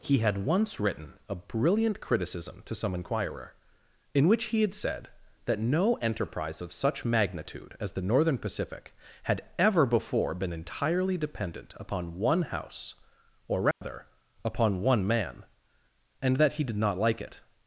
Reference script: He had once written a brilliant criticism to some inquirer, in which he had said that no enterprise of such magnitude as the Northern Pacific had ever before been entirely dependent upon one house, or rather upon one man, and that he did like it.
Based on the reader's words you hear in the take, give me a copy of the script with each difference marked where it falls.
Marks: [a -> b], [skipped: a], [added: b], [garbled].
He had once written a brilliant criticism to some inquirer, in which he had said that no enterprise of such magnitude as the Northern Pacific had ever before been entirely dependent upon one house, or rather upon one man, and that he did [added: not] like it.